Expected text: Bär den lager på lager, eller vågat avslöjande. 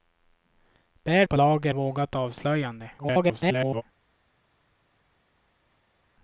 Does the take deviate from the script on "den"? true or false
true